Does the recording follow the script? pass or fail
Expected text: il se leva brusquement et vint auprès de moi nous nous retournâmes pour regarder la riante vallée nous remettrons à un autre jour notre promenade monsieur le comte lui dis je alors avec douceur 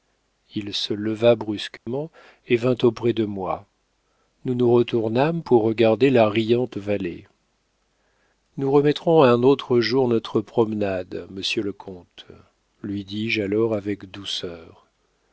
pass